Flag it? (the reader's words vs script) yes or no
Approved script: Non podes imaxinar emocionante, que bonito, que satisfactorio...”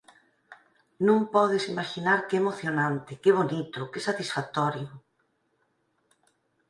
yes